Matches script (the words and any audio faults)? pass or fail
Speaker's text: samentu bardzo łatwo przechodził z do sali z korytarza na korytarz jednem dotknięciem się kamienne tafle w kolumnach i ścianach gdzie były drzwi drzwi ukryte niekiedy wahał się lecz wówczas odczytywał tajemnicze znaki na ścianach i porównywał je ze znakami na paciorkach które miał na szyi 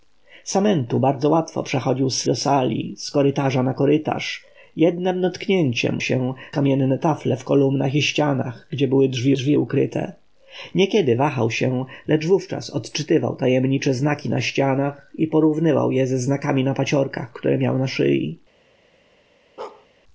fail